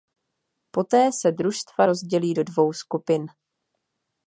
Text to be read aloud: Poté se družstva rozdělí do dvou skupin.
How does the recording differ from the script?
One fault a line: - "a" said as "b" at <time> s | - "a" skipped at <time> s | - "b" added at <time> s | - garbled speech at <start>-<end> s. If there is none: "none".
none